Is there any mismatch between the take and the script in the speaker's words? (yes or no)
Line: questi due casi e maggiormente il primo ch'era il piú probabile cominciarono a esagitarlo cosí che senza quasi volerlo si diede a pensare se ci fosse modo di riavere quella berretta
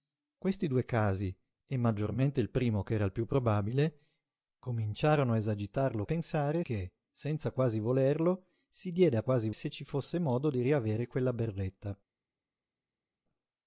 yes